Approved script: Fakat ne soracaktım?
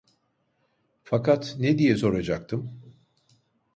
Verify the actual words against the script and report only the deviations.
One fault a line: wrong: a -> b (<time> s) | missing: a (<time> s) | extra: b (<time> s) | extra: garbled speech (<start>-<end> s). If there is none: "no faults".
extra: diye (1.8 s)